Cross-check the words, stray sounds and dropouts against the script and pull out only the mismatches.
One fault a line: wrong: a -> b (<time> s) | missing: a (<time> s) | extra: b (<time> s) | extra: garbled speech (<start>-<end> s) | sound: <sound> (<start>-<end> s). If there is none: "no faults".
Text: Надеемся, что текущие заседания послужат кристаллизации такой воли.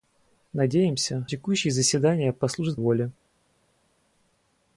missing: что (1.3 s)
missing: кристаллизации такой (2.8 s)